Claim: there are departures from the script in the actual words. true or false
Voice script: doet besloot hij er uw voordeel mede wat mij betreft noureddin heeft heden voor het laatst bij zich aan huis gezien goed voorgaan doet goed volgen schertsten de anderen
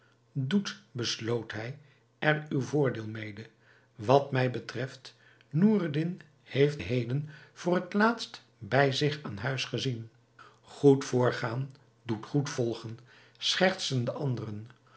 false